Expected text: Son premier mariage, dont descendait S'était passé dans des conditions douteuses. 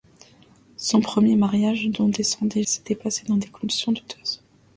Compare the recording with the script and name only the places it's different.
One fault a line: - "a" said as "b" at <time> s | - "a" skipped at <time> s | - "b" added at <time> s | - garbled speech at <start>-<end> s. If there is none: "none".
none